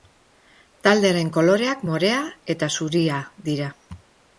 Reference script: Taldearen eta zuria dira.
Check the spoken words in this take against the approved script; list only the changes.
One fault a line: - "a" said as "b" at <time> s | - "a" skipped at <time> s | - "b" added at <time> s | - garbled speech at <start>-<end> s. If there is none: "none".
- "koloreak morea" added at 1.4 s